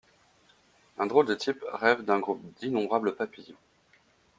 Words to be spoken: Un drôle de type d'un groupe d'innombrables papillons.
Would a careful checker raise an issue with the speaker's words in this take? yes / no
yes